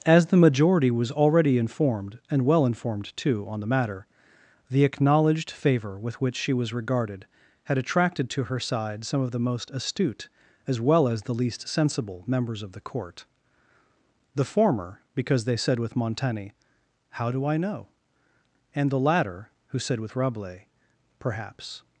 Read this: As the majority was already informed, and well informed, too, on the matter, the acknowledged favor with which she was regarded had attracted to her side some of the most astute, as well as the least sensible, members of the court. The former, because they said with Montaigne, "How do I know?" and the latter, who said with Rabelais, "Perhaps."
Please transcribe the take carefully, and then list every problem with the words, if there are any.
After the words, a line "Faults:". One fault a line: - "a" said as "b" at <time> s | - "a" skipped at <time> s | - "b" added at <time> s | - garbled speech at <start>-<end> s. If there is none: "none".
As the majority was already informed, and well informed, too, on the matter, the acknowledged favor with which she was regarded had attracted to her side some of the most astute, as well as the least sensible, members of the court. The former, because they said with Montaigne, "How do I know?" and the latter, who said with Rabelais, "Perhaps."
Faults:
none